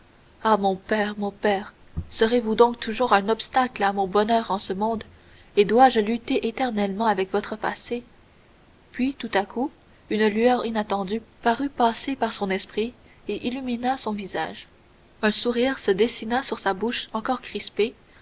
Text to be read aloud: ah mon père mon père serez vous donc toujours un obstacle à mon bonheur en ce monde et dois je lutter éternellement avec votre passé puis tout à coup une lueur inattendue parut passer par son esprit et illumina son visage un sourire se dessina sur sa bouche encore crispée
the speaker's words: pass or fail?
pass